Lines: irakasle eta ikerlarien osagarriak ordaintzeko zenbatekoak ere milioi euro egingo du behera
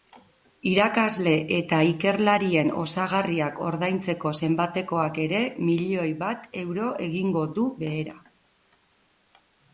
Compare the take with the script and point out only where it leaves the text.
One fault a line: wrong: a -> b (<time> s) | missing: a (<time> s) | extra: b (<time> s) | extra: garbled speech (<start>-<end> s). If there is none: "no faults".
extra: bat (6.2 s)